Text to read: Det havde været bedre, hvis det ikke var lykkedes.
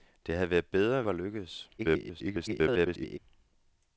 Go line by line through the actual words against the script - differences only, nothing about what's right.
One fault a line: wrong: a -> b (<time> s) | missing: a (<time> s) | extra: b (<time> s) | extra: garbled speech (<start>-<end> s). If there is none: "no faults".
missing: hvis det ikke (1.0 s)
extra: garbled speech (1.8-3.2 s)